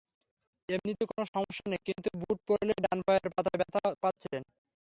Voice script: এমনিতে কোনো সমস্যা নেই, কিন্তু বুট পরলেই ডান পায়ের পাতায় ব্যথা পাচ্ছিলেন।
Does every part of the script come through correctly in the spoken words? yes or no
yes